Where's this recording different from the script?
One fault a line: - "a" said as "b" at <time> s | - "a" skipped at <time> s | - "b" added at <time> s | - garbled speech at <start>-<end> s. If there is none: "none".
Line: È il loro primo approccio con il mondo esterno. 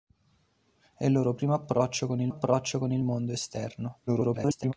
- "approccio con il" added at 2.3 s
- garbled speech at 4.1-4.7 s